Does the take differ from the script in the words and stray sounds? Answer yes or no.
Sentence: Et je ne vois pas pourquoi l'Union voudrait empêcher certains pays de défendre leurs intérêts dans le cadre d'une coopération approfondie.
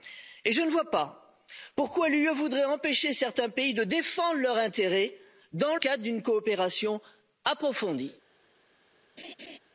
yes